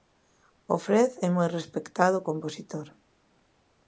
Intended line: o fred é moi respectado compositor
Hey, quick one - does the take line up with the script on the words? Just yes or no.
yes